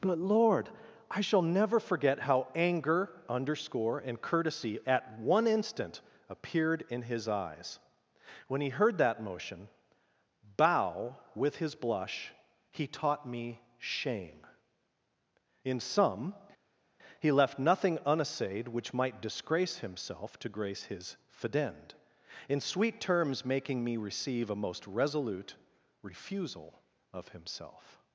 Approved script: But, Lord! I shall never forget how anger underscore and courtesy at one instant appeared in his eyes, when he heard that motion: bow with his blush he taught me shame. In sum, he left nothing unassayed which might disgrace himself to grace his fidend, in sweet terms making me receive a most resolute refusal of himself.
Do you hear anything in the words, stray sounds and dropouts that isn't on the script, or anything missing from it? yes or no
no